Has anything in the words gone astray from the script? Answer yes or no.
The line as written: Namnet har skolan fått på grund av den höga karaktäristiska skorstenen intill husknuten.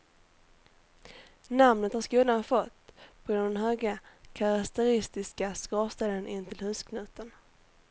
no